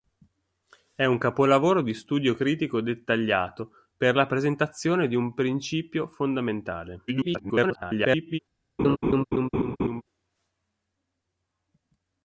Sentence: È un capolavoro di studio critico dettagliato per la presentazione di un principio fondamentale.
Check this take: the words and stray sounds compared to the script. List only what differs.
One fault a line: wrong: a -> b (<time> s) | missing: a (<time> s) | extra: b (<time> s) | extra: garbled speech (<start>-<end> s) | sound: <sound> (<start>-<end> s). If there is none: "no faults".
extra: garbled speech (7.1-8.4 s)
sound: laugh (8.8-10.0 s)